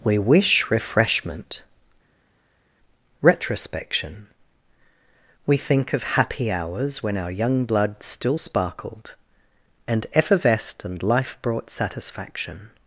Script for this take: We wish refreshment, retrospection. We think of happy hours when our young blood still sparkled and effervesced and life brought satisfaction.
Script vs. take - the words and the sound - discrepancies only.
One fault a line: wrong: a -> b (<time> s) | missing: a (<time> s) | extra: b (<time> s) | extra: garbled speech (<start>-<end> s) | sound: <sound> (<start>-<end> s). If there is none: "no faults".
no faults